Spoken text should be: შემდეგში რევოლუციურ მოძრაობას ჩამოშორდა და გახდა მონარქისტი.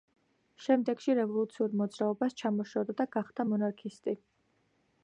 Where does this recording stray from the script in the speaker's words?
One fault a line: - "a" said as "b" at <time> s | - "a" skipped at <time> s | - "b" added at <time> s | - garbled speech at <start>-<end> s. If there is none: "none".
none